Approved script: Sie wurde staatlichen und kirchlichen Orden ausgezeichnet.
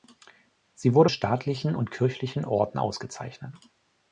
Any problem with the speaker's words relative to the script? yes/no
no